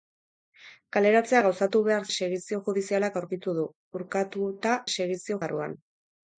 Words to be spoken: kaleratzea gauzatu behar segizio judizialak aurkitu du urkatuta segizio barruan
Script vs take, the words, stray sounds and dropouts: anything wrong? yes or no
no